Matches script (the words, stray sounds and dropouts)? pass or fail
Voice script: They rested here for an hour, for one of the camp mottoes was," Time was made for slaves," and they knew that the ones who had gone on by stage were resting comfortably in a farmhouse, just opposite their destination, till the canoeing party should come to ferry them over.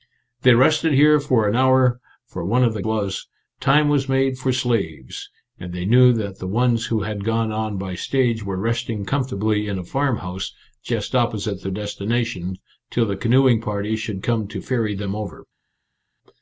fail